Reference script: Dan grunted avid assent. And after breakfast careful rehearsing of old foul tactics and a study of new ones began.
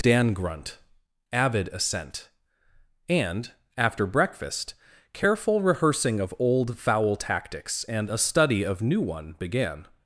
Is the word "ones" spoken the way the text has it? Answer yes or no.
no